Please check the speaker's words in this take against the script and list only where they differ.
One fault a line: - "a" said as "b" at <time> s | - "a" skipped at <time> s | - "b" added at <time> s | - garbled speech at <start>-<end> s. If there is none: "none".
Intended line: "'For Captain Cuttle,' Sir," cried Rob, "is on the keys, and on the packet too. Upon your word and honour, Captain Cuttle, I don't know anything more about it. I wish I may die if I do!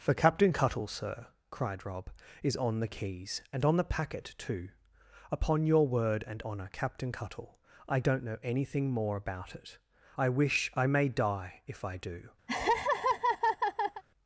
none